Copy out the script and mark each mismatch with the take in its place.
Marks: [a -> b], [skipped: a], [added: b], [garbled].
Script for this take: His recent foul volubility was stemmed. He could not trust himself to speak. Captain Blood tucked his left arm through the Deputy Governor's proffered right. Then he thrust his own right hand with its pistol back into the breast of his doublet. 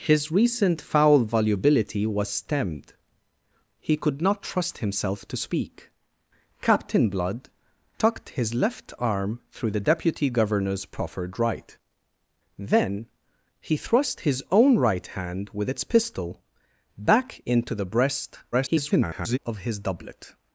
His recent foul volubility was stemmed. He could not trust himself to speak. Captain Blood tucked his left arm through the Deputy Governor's proffered right. Then he thrust his own right hand with its pistol back into the breast [garbled] of his doublet.